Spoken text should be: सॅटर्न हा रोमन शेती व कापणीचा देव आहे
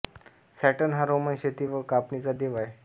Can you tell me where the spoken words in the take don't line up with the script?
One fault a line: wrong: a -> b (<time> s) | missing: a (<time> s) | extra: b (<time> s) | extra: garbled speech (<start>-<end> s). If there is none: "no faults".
no faults